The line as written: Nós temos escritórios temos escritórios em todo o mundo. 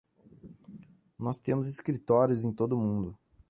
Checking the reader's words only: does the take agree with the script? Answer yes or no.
no